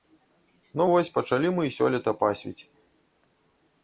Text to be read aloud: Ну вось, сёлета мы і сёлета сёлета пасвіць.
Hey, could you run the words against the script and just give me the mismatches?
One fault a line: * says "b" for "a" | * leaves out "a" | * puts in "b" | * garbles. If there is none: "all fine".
* says "пачалі" for "сёлета"
* leaves out "сёлета"